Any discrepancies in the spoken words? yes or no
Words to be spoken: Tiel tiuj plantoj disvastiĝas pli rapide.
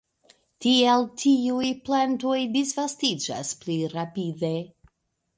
no